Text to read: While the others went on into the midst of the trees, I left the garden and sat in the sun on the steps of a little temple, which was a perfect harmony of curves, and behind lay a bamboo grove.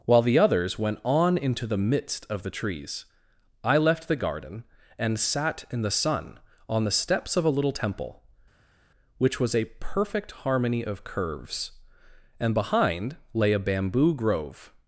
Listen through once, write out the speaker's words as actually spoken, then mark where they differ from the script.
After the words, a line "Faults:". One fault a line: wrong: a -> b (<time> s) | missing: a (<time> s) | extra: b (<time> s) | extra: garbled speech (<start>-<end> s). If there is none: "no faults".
While the others went on into the midst of the trees, I left the garden and sat in the sun on the steps of a little temple, which was a perfect harmony of curves, and behind lay a bamboo grove.
Faults:
no faults